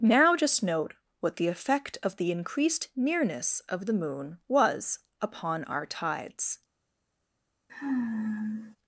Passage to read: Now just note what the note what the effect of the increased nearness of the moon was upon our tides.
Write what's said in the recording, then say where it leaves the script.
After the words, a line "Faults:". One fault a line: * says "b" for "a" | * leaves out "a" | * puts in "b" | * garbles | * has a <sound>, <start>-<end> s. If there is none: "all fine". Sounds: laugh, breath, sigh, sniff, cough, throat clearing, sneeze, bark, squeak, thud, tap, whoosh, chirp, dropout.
Now just note what the effect of the increased nearness of the moon was upon our tides.
Faults:
* leaves out "note what the"
* has a sigh, 7.7-8.8 s